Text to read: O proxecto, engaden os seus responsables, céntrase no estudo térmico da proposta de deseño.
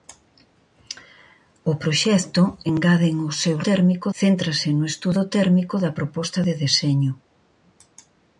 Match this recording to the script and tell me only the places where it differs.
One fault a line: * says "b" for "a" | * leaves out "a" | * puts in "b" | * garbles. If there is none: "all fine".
* says "térmico" for "responsables"